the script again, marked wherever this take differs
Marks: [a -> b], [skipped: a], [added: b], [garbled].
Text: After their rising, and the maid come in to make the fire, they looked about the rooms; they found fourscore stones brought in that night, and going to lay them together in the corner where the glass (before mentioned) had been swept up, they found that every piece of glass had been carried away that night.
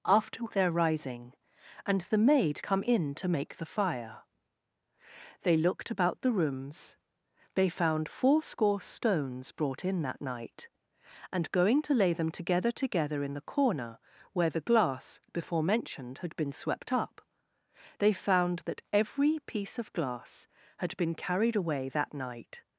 After their rising, and the maid come in to make the fire, they looked about the rooms; they found fourscore stones brought in that night, and going to lay them together [added: together] in the corner where the glass (before mentioned) had been swept up, they found that every piece of glass had been carried away that night.